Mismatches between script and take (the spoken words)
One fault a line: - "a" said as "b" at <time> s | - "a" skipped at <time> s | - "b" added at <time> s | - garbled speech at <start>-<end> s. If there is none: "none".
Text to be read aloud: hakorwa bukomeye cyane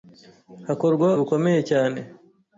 none